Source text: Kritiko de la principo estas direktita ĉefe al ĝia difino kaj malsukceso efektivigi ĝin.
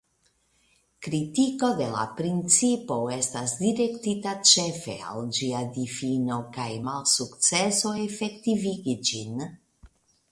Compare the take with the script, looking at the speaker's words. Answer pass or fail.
pass